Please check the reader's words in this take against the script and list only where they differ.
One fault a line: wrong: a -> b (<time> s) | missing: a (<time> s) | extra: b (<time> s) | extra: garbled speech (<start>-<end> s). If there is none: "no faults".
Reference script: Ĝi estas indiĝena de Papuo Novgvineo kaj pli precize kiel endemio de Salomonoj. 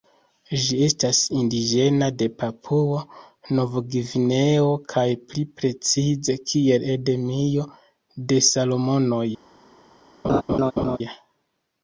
no faults